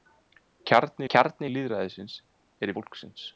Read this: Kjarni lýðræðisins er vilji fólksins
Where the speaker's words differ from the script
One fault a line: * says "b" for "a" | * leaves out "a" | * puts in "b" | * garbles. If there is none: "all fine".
* puts in "kjarni"
* leaves out "vilji"